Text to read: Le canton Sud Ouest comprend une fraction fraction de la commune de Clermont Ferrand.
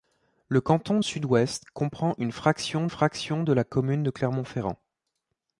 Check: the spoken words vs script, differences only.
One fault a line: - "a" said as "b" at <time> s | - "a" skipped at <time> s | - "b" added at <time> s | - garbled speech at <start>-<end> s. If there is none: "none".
none